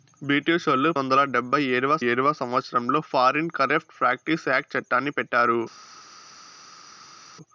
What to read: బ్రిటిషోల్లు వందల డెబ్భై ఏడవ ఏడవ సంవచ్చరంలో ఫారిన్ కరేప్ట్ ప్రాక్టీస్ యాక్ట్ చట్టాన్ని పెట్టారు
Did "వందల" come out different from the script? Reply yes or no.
no